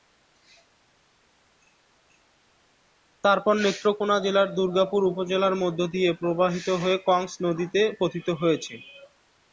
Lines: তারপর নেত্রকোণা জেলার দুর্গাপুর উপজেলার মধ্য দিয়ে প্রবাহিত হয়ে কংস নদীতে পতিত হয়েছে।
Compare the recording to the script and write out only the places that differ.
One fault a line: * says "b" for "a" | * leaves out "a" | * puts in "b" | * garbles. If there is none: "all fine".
all fine